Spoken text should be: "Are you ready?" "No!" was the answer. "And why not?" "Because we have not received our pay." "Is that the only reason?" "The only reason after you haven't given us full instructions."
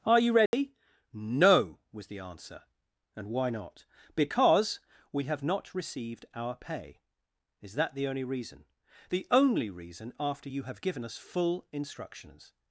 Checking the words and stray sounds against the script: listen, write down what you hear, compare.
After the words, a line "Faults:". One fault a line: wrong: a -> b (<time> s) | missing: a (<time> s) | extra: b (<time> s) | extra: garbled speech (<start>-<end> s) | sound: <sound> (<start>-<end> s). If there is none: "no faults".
"Are you ready?" "No!" was the answer. "And why not?" "Because we have not received our pay." "Is that the only reason?" "The only reason after you have given us full instructions."
Faults:
sound: dropout (0.5-0.5 s)
wrong: haven't -> have (10.6 s)